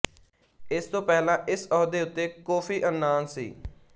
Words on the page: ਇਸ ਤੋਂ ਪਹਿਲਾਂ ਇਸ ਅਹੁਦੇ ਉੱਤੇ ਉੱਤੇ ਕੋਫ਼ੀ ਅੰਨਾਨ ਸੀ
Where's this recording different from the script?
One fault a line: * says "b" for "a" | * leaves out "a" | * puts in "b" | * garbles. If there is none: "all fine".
* leaves out "ਉੱਤੇ"